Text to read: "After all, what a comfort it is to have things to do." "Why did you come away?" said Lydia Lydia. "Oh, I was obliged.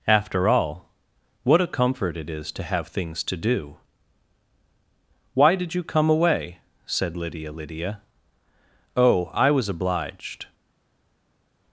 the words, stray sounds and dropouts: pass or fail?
pass